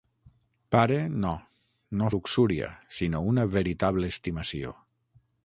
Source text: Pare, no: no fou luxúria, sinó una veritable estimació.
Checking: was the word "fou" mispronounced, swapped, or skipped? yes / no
yes